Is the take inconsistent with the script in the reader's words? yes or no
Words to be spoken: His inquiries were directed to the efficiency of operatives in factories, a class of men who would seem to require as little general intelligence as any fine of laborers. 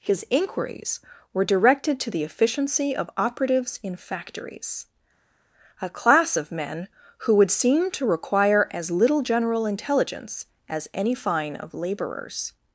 no